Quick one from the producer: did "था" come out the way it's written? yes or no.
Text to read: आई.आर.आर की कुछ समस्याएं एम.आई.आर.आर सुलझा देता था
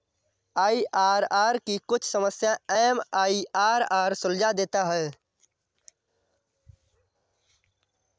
no